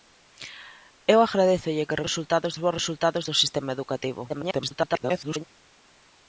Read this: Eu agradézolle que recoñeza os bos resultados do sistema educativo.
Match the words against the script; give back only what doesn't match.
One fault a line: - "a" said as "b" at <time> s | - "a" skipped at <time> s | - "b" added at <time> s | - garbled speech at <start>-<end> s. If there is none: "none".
- "recoñeza" said as "resultados" at 2.1 s
- garbled speech at 4.3-5.4 s